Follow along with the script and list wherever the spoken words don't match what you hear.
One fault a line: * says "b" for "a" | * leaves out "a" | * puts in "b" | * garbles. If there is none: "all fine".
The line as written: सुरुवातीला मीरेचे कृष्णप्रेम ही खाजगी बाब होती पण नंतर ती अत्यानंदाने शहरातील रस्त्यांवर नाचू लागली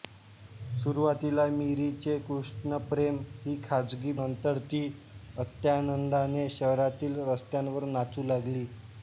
* leaves out "बाब होती पण"